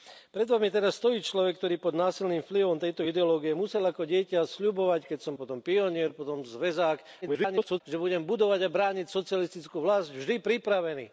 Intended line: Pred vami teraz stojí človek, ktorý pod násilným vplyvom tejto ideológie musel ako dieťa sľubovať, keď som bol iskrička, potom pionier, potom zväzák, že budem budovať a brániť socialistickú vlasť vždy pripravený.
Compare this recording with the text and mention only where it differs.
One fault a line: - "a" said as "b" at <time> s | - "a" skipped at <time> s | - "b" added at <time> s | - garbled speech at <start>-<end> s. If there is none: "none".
- "bol iskrička" skipped at 5.3 s
- garbled speech at 7.2-7.8 s